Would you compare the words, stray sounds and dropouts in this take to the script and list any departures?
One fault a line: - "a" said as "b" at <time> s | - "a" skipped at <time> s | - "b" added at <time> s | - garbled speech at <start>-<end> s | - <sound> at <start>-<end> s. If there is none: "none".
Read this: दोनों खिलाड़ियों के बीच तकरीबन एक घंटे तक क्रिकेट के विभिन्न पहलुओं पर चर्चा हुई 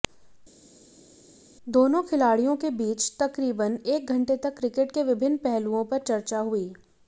none